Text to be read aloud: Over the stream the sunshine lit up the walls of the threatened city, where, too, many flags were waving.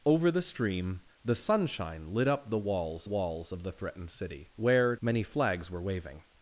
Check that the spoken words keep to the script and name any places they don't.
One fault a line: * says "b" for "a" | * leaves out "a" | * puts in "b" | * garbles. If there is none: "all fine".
* puts in "walls"
* leaves out "too"